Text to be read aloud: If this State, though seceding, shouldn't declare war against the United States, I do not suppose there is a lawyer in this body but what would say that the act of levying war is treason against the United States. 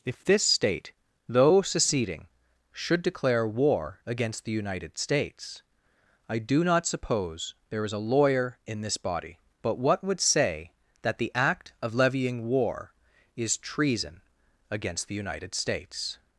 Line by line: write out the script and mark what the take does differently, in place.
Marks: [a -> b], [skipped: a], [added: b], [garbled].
If this State, though seceding, [shouldn't -> should] declare war against the United States, I do not suppose there is a lawyer in this body but what would say that the act of levying war is treason against the United States.